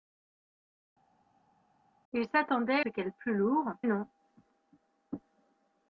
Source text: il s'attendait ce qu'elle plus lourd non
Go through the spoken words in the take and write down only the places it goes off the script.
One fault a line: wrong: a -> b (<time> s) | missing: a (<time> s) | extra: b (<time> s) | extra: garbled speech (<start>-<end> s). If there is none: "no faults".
no faults